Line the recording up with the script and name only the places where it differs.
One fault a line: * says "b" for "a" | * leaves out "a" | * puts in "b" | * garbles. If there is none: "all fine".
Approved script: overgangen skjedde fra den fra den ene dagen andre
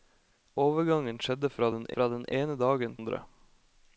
all fine